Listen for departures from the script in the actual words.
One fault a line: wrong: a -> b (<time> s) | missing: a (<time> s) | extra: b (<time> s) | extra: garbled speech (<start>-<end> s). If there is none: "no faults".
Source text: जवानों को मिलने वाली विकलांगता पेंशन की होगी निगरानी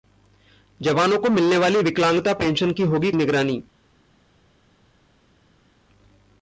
no faults